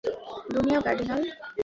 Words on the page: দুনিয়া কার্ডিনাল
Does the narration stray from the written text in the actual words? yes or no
no